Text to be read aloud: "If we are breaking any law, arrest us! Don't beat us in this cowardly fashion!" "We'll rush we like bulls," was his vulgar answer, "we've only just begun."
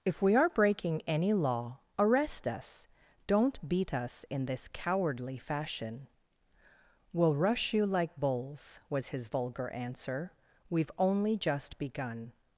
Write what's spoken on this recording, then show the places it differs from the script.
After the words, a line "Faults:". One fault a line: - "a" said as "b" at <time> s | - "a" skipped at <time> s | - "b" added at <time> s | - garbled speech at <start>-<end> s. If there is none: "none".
"If we are breaking any law, arrest us! Don't beat us in this cowardly fashion!" "We'll rush you like bulls," was his vulgar answer, "we've only just begun."
Faults:
- "we" said as "you" at 7.7 s